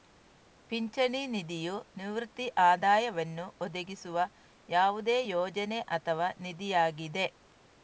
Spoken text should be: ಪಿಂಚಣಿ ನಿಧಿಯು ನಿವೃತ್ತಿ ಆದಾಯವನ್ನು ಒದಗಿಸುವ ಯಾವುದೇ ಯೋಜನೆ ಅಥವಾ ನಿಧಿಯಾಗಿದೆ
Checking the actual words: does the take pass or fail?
pass